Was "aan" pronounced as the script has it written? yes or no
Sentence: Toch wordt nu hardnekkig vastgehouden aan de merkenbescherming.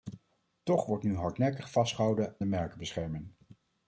no